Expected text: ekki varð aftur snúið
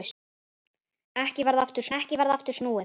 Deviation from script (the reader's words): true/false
true